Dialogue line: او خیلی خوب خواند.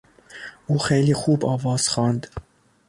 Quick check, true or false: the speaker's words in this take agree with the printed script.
false